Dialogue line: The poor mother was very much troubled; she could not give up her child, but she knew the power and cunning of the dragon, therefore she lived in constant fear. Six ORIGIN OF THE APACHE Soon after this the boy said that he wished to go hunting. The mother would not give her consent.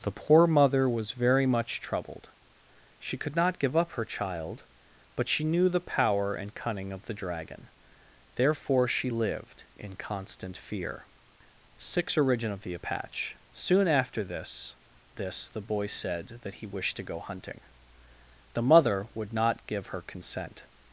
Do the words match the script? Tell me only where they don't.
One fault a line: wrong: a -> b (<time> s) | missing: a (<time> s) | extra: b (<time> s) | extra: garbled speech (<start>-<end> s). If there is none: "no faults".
extra: this (15.2 s)